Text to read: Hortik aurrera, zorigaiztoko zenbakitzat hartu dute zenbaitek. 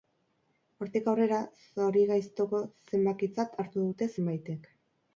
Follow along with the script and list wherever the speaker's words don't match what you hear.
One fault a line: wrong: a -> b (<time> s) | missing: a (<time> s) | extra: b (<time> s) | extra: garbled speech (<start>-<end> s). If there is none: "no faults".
no faults